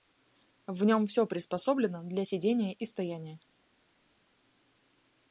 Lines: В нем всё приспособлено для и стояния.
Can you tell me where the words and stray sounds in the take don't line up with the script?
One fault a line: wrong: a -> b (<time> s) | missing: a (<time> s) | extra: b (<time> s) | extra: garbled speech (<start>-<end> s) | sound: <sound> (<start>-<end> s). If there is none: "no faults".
extra: сидения (2.2 s)